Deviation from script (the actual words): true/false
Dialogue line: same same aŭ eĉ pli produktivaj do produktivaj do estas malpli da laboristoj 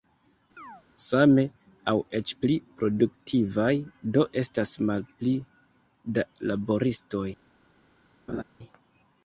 true